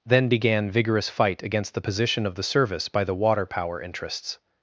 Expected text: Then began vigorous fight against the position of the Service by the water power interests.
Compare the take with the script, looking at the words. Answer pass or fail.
pass